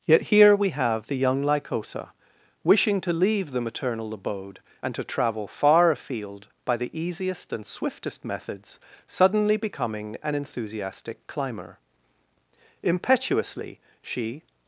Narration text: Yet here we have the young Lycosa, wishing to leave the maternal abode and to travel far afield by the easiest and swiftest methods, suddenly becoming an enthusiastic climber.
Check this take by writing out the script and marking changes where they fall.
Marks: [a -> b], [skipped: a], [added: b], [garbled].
Yet here we have the young Lycosa, wishing to leave the maternal abode and to travel far afield by the easiest and swiftest methods, suddenly becoming an enthusiastic climber. [added: Impetuously she]